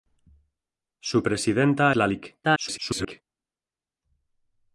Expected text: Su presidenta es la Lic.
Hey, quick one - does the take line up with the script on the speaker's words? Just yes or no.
no